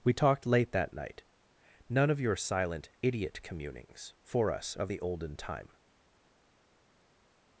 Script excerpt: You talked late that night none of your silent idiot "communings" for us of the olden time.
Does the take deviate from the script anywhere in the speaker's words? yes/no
yes